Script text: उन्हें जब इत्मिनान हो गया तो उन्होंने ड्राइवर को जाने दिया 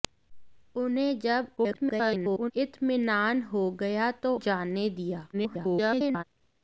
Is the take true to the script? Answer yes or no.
no